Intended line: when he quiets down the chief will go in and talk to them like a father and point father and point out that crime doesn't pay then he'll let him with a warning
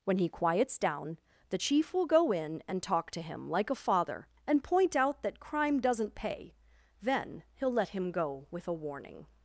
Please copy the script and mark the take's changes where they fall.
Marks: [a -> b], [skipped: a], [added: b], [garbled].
when he quiets down the chief will go in and talk to [them -> him] like a father and point [skipped: father and point] out that crime doesn't pay then he'll let him [added: go] with a warning